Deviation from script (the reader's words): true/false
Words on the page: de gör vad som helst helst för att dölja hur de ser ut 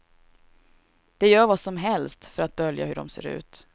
true